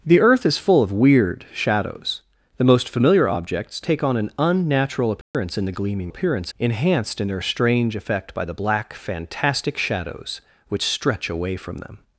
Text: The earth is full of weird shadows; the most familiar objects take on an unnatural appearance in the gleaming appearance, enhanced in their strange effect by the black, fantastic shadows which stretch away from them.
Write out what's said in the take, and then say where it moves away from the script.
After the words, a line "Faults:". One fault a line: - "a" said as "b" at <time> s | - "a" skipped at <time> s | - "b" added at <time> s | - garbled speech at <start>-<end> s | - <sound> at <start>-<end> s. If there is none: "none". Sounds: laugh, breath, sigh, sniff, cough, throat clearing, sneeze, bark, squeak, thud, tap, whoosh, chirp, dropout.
The earth is full of weird shadows; the most familiar objects take on an unnatural appearance in the gleaming appearance, enhanced in their strange effect by the black, fantastic shadows which stretch away from them.
Faults:
- dropout at 5.2-5.3 s